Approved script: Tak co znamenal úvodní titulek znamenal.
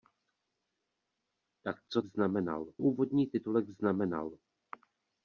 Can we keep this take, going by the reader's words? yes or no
yes